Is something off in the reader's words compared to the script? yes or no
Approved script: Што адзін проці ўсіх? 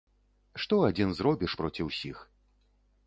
yes